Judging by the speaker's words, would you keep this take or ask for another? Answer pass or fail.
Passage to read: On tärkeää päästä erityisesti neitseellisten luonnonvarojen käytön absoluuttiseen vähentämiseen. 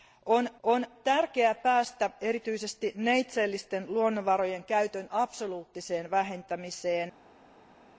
fail